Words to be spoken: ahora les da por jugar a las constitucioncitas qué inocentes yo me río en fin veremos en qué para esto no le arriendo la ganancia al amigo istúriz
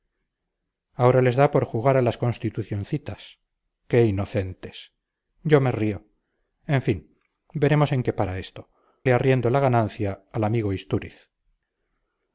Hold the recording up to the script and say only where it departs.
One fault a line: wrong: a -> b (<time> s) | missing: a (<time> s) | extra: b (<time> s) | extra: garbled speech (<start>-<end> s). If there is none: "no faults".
missing: no (8.7 s)